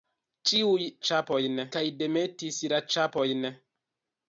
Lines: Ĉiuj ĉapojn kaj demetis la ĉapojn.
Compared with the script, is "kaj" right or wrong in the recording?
right